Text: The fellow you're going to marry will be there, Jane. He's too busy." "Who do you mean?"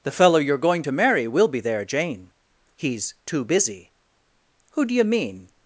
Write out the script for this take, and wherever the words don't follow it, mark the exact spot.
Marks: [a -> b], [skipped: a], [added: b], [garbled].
The fellow you're going to marry will be there, Jane. He's too busy." "Who do you mean?"